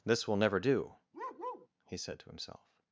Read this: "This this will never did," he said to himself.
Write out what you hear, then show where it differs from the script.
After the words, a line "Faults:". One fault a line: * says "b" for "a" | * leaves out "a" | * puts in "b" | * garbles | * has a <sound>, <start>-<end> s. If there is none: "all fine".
"This will never do," he said to himself.
Faults:
* leaves out "this"
* says "do" for "did"
* has a bark, 1.1-1.7 s